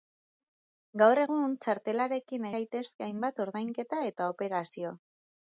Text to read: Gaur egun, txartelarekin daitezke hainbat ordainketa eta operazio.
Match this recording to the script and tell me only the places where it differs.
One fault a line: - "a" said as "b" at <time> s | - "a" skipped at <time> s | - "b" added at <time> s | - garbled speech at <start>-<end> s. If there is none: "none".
none